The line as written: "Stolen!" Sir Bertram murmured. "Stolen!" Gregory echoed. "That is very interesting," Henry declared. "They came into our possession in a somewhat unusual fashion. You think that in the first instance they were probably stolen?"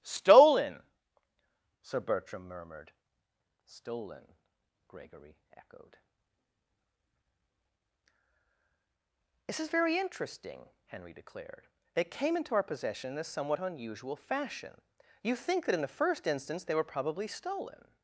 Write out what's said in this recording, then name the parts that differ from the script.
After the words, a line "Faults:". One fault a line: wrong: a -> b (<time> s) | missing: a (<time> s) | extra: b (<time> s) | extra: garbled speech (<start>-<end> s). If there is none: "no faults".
"Stolen!" Sir Bertram murmured. "Stolen!" Gregory echoed. "This is very interesting," Henry declared. "They came into our possession in a somewhat unusual fashion. You think that in the first instance they were probably stolen?"
Faults:
wrong: That -> This (9.4 s)